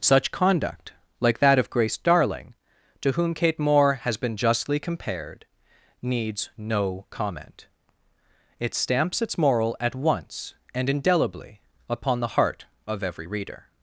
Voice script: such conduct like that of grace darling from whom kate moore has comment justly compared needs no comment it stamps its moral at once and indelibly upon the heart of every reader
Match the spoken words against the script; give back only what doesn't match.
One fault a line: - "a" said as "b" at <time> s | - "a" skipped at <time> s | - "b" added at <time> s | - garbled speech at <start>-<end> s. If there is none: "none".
- "from" said as "to" at 3.0 s
- "comment" said as "been" at 4.2 s